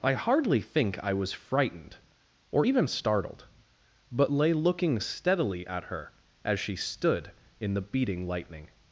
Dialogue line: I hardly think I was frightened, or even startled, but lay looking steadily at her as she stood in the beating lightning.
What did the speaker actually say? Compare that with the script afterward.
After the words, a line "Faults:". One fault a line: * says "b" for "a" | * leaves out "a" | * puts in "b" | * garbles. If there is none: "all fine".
I hardly think I was frightened, or even startled, but lay looking steadily at her as she stood in the beating lightning.
Faults:
all fine